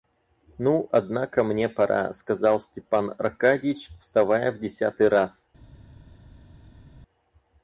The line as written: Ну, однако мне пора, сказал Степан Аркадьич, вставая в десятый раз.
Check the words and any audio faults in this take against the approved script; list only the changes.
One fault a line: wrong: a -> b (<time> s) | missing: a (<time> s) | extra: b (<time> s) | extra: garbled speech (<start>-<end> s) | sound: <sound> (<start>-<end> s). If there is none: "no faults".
no faults